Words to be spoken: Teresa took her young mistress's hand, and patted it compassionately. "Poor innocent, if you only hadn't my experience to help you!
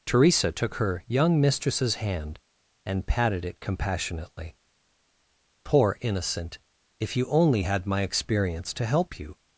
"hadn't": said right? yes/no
no